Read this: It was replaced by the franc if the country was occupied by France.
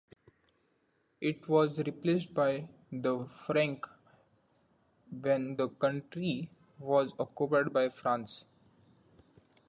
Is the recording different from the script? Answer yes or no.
yes